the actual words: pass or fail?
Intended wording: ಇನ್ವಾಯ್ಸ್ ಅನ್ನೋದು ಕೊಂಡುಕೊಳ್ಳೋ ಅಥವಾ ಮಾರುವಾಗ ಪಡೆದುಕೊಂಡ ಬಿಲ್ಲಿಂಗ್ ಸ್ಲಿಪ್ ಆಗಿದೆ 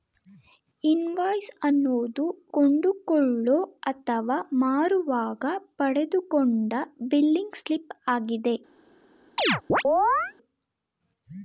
pass